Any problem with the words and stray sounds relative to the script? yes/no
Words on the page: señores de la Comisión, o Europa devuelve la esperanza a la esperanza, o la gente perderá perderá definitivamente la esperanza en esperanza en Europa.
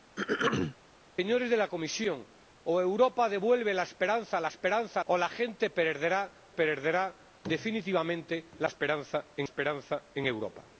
yes